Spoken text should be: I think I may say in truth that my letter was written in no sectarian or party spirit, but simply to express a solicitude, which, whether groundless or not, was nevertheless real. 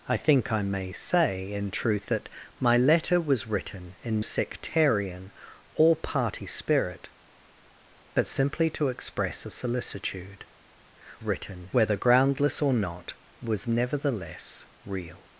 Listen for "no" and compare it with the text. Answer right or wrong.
wrong